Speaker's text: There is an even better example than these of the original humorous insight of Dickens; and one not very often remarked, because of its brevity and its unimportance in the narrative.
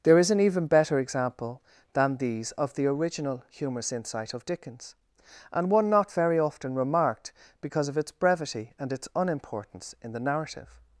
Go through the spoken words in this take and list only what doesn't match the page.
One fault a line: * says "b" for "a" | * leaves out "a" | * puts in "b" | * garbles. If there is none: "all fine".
all fine